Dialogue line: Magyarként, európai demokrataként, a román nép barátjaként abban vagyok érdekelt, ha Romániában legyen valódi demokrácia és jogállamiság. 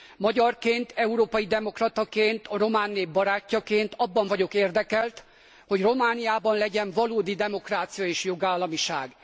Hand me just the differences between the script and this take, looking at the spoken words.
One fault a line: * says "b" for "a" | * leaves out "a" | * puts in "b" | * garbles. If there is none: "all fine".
* says "hogy" for "ha"